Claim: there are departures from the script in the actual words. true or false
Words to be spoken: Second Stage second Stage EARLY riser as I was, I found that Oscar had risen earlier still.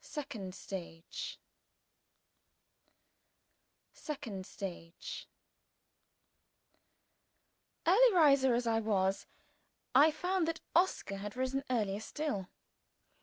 false